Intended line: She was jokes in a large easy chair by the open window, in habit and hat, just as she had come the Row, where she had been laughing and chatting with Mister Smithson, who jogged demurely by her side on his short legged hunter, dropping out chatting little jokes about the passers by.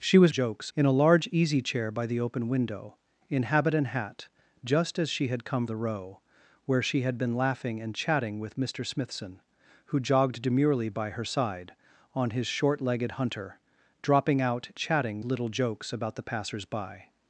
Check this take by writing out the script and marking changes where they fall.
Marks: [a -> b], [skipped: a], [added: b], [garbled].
She was jokes in a large easy chair by the open window, in habit and hat, just as she had come the Row, where she had been laughing and chatting with Mister Smithson, who jogged demurely by her side on his short legged hunter, dropping out chatting little jokes about the passers by.